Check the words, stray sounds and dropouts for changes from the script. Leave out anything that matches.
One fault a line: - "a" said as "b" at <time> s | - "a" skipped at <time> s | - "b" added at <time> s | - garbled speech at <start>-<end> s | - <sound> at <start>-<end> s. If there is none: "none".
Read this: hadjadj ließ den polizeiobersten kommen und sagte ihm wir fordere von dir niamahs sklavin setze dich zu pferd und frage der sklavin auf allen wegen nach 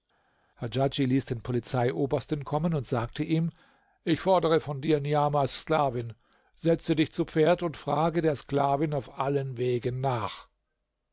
- "wir" said as "ich" at 4.0 s